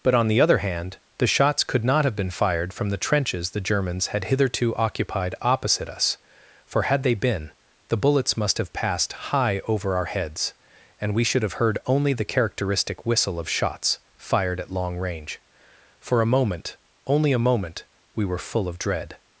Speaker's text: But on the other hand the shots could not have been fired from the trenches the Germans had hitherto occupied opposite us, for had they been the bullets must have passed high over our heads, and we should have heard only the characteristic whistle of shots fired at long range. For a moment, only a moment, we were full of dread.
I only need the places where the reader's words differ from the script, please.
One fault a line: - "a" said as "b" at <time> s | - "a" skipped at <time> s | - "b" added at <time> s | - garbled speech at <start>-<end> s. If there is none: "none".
none